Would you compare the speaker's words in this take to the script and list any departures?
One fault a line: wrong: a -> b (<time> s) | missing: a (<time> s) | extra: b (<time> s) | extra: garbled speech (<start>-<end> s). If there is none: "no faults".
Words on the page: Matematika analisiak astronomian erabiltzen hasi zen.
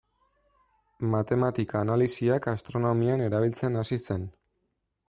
no faults